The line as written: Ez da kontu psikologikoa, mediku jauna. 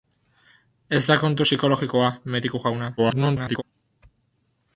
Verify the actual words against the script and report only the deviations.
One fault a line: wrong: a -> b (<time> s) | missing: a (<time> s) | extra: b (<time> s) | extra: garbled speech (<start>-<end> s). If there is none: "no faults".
extra: garbled speech (3.0-3.6 s)